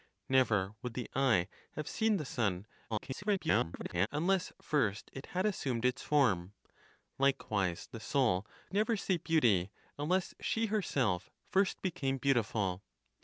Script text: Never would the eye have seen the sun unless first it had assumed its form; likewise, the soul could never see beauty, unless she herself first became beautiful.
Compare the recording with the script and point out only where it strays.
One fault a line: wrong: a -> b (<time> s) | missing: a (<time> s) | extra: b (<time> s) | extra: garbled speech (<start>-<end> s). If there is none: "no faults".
extra: garbled speech (2.9-4.1 s)
missing: could (8.5 s)